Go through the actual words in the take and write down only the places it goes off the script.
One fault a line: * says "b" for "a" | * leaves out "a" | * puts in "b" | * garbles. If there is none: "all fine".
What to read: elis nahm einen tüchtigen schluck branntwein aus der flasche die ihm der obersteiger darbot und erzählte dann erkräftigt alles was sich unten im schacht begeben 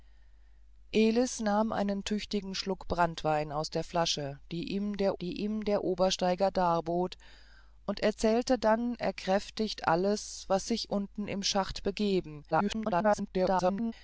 * puts in "die ihm der"
* garbles